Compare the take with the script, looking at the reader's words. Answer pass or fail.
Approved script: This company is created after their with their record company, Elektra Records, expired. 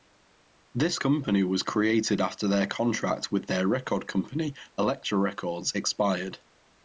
fail